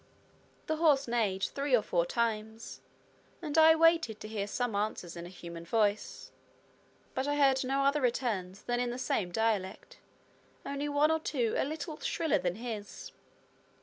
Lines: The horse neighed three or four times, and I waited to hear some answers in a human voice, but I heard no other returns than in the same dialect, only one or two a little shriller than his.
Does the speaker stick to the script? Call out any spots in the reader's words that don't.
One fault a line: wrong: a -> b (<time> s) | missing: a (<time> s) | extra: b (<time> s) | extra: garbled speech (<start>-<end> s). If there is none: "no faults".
no faults